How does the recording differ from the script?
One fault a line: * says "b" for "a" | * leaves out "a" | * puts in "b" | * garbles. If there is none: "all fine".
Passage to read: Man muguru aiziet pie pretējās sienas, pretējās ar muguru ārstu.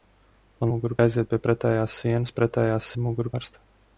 all fine